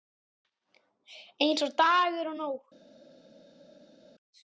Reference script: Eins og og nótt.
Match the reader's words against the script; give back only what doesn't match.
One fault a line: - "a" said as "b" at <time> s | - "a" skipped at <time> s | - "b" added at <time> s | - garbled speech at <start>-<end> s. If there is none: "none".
- "dagur" added at 1.8 s